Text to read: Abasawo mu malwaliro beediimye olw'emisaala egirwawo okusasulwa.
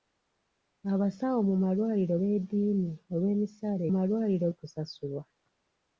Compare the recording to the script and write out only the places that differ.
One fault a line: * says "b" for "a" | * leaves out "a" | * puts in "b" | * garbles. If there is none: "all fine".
* says "malwaliro" for "egirwawo"